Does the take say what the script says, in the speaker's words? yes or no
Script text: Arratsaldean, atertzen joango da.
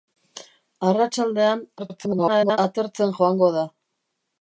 no